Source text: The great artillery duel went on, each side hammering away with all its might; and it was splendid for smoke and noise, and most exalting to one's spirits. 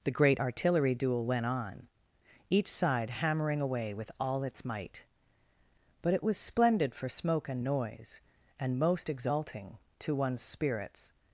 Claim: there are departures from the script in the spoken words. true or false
true